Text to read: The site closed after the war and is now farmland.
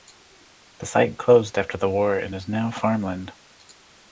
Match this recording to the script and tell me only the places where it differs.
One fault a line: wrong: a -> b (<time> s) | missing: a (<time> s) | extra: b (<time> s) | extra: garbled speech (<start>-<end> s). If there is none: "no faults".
no faults